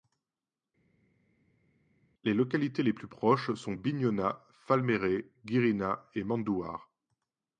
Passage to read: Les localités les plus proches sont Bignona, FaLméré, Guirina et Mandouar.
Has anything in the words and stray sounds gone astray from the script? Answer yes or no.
no